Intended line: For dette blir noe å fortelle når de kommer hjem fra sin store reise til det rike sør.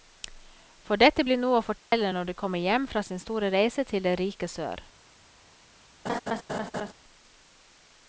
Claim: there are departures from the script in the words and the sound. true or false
true